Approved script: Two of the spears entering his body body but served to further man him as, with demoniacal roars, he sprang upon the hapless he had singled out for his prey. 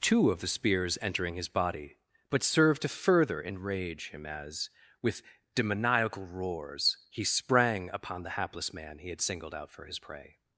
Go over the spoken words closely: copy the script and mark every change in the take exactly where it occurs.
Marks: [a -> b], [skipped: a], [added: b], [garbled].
Two of the spears entering his body [skipped: body] but served to further [man -> enrage] him as, with demoniacal roars, he sprang upon the hapless [added: man] he had singled out for his prey.